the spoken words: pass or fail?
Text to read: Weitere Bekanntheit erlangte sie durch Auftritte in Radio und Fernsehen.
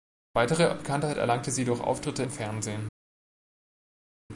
fail